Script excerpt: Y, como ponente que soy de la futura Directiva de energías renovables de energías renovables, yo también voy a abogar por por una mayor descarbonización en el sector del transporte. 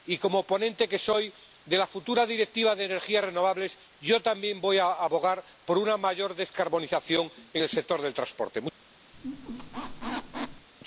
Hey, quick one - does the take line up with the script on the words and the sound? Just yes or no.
no